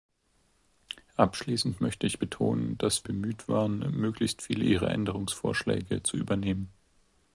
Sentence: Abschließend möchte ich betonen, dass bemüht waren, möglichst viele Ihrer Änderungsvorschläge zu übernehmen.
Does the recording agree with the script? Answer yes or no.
yes